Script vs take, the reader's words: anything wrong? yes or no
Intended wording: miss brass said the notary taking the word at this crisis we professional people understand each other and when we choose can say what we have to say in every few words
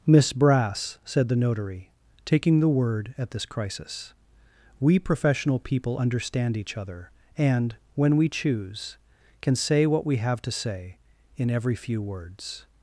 no